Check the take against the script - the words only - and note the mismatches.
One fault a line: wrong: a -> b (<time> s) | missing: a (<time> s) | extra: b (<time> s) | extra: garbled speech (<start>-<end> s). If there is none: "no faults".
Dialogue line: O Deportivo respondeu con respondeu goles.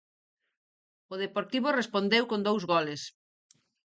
wrong: respondeu -> dous (2.5 s)